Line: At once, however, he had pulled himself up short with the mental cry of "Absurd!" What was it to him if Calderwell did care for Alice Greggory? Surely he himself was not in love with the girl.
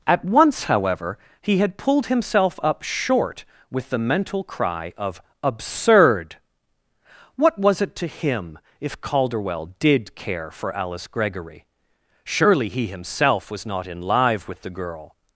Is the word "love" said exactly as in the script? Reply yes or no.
no